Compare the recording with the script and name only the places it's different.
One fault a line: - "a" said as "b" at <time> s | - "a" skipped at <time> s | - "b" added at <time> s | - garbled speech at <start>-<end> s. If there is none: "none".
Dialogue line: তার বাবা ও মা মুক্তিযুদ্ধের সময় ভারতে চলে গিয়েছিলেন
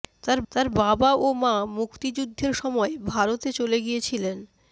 - "তার" added at 0.5 s